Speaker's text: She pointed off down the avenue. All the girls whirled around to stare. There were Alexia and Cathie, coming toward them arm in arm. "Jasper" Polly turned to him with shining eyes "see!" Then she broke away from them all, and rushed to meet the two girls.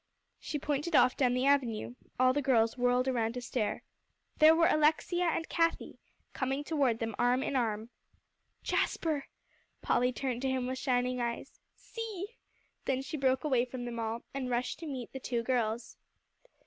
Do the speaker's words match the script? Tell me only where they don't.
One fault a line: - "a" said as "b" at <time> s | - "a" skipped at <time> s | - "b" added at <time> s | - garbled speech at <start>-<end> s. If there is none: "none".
none